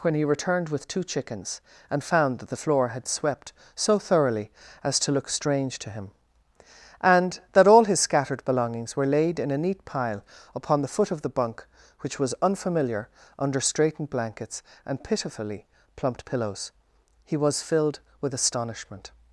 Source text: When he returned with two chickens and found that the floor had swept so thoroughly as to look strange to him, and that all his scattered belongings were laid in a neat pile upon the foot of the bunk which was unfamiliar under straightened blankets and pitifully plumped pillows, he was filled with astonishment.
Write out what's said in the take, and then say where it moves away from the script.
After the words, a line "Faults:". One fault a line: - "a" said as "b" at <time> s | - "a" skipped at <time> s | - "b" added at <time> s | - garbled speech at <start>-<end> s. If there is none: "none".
When he returned with two chickens and found that the floor had swept so thoroughly as to look strange to him, and that all his scattered belongings were laid in a neat pile upon the foot of the bunk which was unfamiliar under straightened blankets and pitifully plumped pillows, he was filled with astonishment.
Faults:
none